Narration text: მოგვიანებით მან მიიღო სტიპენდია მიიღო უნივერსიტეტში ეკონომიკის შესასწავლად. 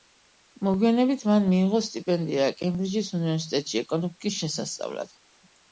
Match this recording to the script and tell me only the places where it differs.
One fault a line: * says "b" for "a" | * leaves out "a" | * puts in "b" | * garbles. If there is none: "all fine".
* says "კემბრიჯის" for "მიიღო"